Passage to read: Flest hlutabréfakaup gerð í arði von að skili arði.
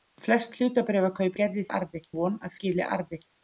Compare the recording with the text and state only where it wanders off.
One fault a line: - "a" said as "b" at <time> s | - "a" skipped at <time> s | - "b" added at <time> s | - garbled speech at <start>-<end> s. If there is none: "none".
none